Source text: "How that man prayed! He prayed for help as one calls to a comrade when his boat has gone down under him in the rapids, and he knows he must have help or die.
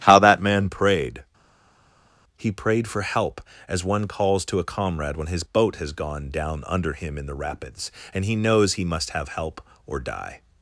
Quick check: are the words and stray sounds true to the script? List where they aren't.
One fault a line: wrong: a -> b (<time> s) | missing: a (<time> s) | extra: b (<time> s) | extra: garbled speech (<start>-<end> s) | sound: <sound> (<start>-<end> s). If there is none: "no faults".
no faults